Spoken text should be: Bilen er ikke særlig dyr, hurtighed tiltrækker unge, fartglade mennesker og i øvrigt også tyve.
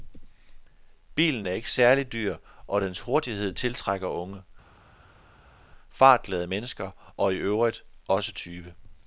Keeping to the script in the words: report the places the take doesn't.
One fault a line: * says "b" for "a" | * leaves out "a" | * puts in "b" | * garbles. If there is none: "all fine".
* puts in "og dens"